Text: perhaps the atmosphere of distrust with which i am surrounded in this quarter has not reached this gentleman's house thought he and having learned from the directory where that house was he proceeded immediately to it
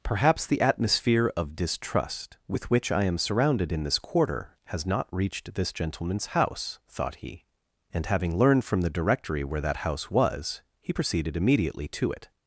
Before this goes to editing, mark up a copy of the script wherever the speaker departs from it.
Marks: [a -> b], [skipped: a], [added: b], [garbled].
perhaps the atmosphere of distrust with which i am surrounded in this quarter has not reached this gentleman's house thought he and having learned from the directory where that house was he proceeded immediately to it